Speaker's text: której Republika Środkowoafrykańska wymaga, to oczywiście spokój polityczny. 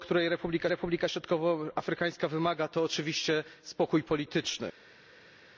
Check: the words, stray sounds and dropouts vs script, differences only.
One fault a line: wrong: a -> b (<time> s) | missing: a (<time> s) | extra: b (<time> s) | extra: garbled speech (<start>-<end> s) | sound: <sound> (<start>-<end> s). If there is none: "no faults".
extra: Republika (0.7 s)